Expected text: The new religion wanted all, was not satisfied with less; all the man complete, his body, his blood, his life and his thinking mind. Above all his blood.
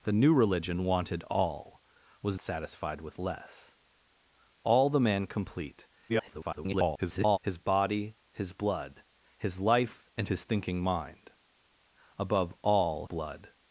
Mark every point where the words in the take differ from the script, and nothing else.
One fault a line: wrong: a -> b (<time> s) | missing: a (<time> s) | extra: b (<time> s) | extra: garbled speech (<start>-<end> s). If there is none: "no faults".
missing: not (2.4 s)
extra: garbled speech (6.1-7.4 s)
missing: his (13.1 s)